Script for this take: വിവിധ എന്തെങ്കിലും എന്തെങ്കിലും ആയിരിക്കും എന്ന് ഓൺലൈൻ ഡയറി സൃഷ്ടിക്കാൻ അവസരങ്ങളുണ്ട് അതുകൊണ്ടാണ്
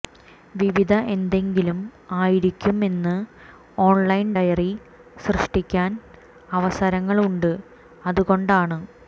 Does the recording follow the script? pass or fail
fail